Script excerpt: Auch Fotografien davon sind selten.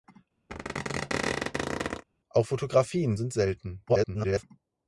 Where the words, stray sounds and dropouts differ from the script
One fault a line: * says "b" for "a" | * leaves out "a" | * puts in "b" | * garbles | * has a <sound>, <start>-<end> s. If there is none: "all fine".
* has a squeak, 0.5-2.0 s
* leaves out "davon"
* garbles